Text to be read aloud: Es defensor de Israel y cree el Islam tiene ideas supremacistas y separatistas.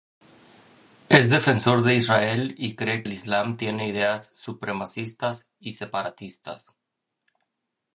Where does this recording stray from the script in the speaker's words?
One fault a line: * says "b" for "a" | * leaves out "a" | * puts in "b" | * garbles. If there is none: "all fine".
all fine